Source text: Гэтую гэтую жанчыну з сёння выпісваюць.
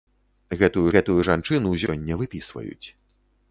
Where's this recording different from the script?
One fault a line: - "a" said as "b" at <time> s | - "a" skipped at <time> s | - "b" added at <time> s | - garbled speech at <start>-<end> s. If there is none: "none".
none